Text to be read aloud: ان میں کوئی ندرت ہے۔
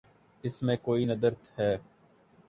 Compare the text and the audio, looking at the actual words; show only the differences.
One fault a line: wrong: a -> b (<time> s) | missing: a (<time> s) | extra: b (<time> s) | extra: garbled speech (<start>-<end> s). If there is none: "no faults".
wrong: ان -> اس (0.4 s)